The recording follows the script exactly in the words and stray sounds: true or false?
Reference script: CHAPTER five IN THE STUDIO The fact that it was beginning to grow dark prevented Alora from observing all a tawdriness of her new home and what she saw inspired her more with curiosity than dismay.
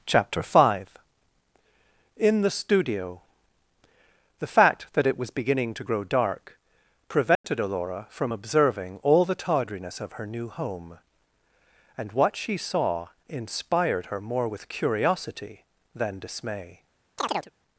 false